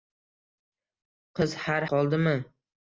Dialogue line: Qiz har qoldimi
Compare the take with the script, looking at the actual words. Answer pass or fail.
pass